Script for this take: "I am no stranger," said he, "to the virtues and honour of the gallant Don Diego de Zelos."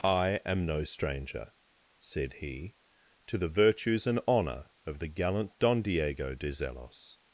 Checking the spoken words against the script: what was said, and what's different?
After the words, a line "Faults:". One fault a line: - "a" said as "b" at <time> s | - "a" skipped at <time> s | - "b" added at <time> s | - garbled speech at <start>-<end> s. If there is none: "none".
"I am no stranger," said he, "to the virtues and honour of the gallant Don Diego de Zelos."
Faults:
none